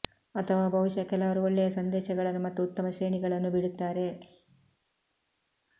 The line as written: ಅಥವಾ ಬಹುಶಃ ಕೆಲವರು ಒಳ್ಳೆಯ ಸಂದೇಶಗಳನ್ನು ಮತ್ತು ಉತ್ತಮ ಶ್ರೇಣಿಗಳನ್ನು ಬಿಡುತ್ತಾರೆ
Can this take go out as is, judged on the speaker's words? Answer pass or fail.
pass